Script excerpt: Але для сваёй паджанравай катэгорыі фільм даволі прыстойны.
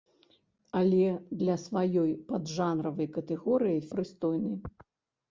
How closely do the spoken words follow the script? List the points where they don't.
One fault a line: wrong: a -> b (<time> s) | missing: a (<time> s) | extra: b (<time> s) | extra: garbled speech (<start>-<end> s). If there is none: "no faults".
missing: фільм даволі (3.8 s)